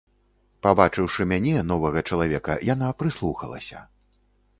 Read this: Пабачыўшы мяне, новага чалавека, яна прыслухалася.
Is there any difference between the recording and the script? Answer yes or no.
no